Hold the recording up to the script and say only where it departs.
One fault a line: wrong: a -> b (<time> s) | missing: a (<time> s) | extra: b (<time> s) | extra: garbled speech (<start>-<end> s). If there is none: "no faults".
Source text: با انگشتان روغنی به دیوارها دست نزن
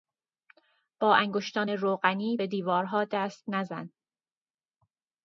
no faults